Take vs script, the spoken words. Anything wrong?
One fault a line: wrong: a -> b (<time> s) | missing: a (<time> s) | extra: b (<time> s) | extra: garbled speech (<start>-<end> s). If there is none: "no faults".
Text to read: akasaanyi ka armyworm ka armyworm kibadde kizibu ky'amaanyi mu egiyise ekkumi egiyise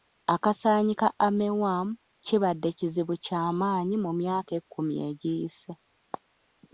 missing: ka armyworm (1.9 s)
wrong: egiyise -> myaka (4.2 s)